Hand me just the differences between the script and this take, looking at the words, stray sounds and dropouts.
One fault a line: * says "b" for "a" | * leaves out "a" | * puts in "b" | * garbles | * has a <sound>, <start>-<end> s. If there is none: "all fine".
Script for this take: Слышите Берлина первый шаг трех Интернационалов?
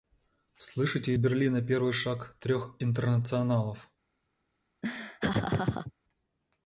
* has a laugh, 4.8-5.9 s